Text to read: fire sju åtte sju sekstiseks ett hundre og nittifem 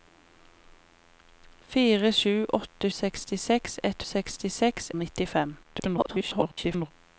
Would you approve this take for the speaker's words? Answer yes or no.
no